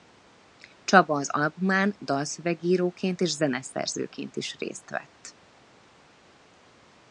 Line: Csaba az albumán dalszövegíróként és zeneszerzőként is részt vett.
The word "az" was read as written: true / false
true